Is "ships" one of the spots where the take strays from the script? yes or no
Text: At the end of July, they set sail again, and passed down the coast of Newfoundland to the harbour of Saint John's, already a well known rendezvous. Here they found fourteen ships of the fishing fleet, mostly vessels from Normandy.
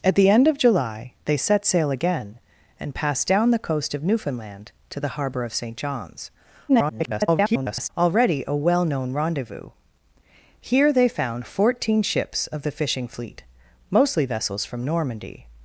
no